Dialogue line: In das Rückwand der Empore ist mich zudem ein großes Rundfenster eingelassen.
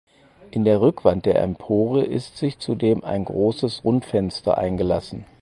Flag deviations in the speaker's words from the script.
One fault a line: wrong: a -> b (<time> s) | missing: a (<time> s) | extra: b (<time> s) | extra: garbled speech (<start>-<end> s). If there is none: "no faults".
wrong: das -> der (0.7 s)
wrong: mich -> sich (2.4 s)